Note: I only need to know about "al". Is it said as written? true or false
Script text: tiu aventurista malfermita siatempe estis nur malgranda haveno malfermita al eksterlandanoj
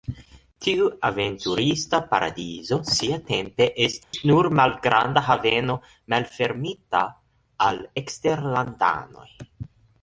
true